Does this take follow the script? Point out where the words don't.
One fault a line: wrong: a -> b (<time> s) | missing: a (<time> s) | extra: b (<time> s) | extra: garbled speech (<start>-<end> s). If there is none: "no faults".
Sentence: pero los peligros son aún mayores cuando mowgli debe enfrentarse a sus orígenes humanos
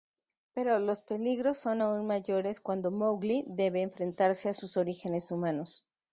no faults